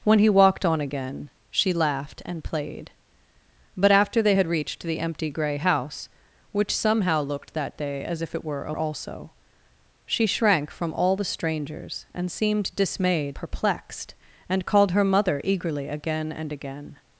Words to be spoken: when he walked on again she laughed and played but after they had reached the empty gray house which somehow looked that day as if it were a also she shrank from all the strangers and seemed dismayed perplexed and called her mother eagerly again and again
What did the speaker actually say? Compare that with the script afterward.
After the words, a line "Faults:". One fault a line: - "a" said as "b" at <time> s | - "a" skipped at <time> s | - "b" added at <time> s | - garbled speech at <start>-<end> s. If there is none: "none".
when he walked on again she laughed and played but after they had reached the empty gray house which somehow looked that day as if it were a also she shrank from all the strangers and seemed dismayed perplexed and called her mother eagerly again and again
Faults:
none